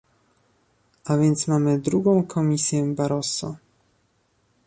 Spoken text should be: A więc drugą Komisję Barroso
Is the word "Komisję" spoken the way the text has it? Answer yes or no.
yes